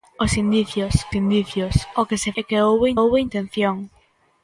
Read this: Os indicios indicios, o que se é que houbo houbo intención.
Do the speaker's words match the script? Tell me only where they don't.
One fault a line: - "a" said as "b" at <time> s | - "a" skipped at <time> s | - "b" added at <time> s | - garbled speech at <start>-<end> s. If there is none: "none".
none